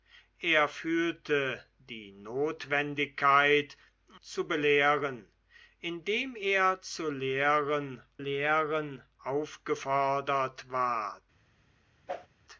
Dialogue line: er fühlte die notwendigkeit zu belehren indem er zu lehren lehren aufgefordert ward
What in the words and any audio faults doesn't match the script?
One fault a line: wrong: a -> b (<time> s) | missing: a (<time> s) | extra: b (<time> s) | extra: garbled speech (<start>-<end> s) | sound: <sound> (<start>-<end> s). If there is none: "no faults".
sound: whoosh (12.1-12.3 s)